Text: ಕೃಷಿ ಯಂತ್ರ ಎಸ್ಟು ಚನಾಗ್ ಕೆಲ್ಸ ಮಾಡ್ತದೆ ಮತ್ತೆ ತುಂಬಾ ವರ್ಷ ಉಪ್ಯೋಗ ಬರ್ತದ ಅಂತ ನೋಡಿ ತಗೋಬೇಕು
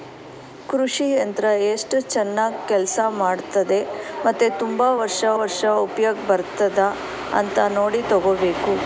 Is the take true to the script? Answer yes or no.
no